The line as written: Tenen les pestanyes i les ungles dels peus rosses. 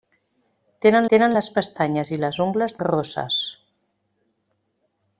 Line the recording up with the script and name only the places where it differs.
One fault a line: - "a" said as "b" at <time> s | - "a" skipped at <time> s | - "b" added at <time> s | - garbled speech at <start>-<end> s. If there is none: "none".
- "tenen" added at 1.1 s
- "dels peus" skipped at 2.8 s